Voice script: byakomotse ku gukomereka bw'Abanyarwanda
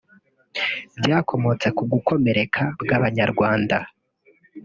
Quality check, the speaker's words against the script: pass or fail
pass